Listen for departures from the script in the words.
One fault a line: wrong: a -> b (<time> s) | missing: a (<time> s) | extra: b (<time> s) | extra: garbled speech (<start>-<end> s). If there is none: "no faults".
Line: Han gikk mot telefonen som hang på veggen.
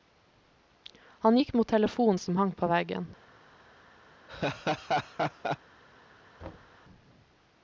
no faults